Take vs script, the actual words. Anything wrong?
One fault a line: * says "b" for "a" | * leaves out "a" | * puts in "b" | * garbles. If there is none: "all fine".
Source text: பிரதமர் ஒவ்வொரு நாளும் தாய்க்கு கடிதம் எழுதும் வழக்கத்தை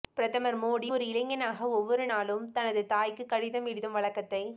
* puts in "மோடி ஒரு இளைஞனாக"
* puts in "தனது"